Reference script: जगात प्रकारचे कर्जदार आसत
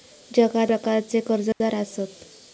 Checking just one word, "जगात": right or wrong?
right